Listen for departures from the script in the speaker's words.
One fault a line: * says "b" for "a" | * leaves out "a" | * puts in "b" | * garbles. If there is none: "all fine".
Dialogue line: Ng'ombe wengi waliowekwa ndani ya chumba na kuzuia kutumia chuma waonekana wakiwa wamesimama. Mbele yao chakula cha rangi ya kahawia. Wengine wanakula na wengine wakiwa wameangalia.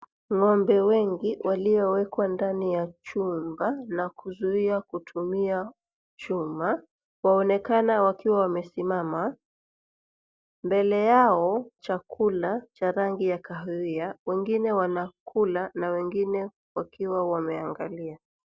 all fine